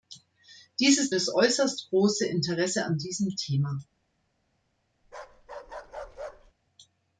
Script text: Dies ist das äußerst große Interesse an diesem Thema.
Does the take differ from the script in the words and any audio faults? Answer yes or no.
yes